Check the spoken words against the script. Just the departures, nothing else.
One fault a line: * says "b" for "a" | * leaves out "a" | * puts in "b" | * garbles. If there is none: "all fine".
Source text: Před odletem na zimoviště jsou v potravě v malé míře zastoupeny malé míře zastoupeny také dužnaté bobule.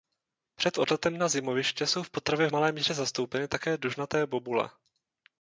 * leaves out "malé míře zastoupeny"